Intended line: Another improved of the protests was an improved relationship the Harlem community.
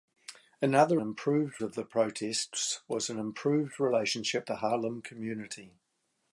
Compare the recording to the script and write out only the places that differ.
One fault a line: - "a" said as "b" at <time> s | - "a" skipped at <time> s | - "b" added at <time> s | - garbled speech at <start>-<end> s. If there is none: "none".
none